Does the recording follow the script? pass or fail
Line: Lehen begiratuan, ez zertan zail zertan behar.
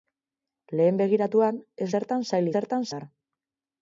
pass